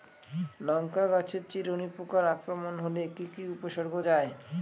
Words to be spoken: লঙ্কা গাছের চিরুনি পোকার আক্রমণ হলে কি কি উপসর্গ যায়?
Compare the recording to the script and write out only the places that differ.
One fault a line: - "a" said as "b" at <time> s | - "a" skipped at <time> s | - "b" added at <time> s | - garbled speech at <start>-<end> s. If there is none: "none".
none